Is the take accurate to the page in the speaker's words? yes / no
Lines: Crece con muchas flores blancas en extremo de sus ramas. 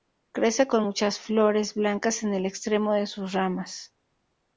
no